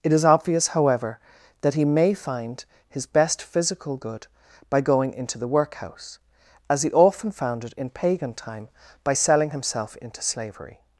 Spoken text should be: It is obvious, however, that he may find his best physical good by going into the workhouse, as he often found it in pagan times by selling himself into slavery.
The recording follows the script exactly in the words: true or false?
false